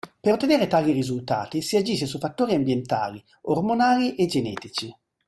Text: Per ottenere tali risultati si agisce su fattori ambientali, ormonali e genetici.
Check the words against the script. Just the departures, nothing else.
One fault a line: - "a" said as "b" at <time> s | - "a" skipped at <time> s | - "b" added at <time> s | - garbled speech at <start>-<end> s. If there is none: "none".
none